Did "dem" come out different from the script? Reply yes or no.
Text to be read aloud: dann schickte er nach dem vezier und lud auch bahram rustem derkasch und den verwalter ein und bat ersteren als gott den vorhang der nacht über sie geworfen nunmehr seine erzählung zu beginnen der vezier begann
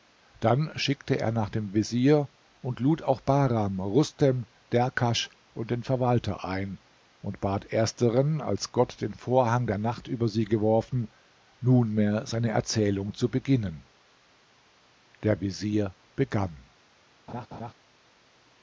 no